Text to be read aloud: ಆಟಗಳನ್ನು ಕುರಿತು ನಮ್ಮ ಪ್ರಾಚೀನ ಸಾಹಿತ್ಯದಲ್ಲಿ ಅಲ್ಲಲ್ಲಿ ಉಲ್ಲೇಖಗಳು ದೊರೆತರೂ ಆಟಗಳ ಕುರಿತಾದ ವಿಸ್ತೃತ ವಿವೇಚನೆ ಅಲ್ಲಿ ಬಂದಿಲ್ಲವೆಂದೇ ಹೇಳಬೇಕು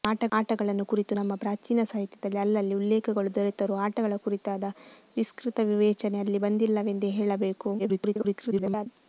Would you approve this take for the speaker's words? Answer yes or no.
no